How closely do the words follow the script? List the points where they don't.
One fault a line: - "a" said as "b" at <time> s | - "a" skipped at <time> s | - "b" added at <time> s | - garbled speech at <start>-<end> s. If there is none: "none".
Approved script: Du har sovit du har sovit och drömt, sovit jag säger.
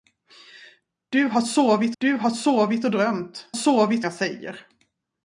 none